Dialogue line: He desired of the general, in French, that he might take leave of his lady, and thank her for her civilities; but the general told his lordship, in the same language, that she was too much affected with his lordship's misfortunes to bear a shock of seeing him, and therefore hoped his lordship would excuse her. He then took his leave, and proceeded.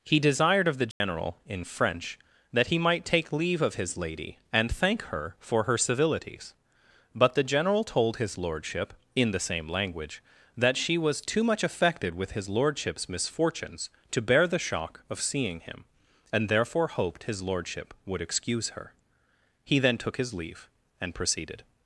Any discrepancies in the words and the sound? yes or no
yes